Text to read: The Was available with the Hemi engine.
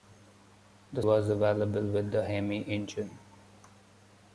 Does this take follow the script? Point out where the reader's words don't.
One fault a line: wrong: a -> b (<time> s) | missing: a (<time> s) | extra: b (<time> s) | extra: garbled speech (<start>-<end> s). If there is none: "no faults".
no faults